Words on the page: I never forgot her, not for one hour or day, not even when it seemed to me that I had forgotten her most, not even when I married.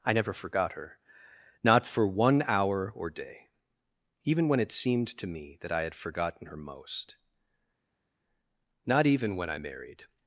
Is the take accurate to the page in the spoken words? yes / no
no